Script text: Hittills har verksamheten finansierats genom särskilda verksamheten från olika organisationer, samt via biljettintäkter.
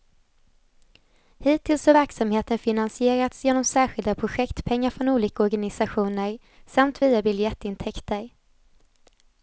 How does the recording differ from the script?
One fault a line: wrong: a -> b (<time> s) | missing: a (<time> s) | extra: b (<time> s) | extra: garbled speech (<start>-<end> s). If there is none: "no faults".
wrong: verksamheten -> projektpengar (4.2 s)